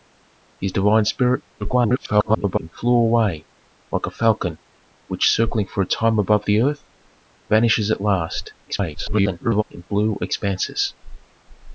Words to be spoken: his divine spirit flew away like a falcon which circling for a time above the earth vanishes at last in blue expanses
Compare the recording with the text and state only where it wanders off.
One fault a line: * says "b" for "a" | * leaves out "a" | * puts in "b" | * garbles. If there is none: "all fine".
* garbles
* garbles